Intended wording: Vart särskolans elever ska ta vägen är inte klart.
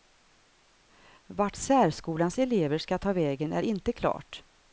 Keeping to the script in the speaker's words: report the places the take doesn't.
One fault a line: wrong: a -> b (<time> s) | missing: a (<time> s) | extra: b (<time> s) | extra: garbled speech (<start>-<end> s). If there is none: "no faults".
no faults